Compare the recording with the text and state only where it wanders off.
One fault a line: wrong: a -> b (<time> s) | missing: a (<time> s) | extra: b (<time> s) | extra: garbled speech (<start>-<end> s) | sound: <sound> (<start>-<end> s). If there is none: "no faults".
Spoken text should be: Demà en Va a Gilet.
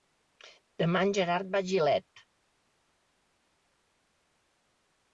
extra: Gerard (1.2 s)